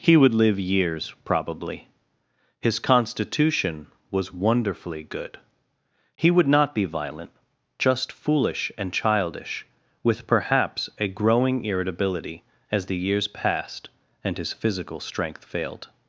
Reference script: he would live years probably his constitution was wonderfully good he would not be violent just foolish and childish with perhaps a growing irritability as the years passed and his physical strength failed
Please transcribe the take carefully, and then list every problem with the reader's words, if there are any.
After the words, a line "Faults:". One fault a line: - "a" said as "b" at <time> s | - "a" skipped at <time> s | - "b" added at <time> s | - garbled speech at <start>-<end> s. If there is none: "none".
he would live years probably his constitution was wonderfully good he would not be violent just foolish and childish with perhaps a growing irritability as the years passed and his physical strength failed
Faults:
none